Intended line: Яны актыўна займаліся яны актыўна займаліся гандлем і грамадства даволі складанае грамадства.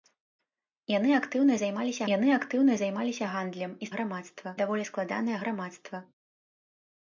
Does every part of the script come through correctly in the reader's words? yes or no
yes